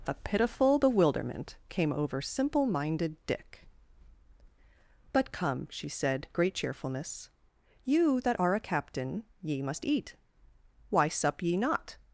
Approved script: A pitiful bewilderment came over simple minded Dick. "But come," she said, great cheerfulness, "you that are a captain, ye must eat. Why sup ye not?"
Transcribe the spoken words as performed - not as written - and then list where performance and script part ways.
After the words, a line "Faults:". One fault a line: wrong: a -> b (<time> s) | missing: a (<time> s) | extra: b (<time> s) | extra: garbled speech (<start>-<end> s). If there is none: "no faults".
A pitiful bewilderment came over simple minded Dick. "But come," she said, great cheerfulness, "you that are a captain, ye must eat. Why sup ye not?"
Faults:
no faults